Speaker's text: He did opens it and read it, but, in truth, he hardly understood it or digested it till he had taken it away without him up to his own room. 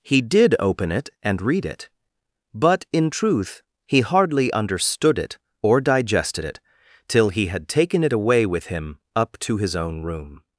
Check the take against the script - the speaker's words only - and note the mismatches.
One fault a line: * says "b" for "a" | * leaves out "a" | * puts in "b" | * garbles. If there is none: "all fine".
* says "open" for "opens"
* says "with" for "without"